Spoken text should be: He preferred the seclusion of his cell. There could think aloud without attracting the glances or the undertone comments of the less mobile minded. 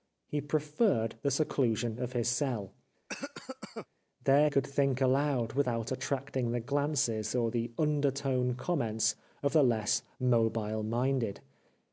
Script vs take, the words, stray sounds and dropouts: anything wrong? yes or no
yes